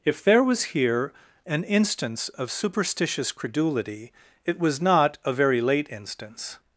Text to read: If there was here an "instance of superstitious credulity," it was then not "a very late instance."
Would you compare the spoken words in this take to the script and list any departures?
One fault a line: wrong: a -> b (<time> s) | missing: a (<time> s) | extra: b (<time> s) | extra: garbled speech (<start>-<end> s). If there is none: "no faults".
missing: then (4.8 s)